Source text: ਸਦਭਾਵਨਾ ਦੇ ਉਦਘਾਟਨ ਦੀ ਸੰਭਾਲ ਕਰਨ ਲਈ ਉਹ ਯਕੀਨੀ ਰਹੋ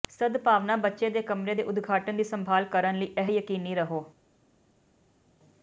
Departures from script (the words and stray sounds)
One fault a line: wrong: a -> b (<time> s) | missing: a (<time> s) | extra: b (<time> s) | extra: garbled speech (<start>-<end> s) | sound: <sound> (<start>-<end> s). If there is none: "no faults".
extra: ਬੱਚੇ (0.8 s)
extra: ਕਮਰੇ ਦੇ (1.2 s)
wrong: ਉਹ -> ਇਹ (3.2 s)